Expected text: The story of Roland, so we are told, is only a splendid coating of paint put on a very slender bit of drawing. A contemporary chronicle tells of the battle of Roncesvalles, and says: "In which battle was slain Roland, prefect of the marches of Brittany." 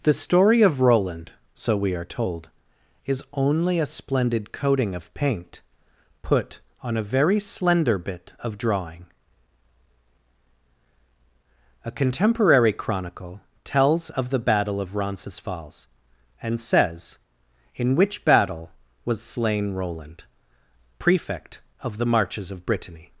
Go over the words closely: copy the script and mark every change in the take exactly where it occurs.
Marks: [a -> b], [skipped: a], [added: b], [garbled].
The story of Roland, so we are told, is only a splendid coating of paint put on a very slender bit of drawing. A contemporary chronicle tells of the battle of Roncesvalles, and says: "In which battle was slain Roland, prefect of the marches of Brittany."